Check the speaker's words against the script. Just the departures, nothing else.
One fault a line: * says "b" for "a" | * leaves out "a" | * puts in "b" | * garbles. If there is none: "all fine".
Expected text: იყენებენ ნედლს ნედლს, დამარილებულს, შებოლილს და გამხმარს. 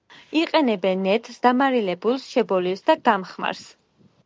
* leaves out "ნედლს"